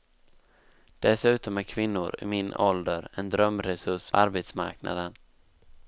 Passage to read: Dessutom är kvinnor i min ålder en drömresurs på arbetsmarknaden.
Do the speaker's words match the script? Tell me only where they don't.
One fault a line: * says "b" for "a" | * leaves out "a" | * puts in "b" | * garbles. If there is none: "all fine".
* leaves out "på"